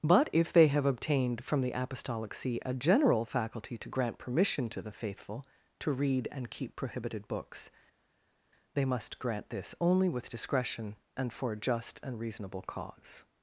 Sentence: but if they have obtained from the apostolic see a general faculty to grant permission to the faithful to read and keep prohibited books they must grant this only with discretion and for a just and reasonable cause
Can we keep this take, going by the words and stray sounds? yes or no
yes